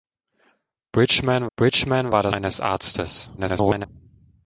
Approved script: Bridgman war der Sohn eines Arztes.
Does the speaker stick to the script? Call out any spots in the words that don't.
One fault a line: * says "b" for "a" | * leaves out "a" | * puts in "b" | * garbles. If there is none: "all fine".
* puts in "bridgman"
* leaves out "Sohn"
* garbles